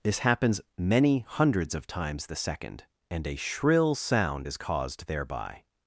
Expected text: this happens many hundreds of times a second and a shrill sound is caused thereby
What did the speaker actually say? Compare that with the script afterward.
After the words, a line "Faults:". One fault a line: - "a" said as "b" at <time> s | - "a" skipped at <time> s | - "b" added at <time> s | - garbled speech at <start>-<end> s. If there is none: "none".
this happens many hundreds of times the second and a shrill sound is caused thereby
Faults:
- "a" said as "the" at 2.2 s